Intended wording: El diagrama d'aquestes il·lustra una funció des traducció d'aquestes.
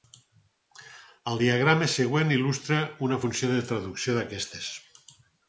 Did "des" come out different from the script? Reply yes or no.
yes